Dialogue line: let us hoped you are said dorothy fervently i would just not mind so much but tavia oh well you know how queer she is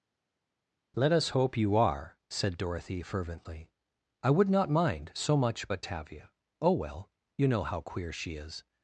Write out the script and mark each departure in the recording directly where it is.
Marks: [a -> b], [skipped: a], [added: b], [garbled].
let us [hoped -> hope] you are said dorothy fervently i would [skipped: just] not mind so much but tavia oh well you know how queer she is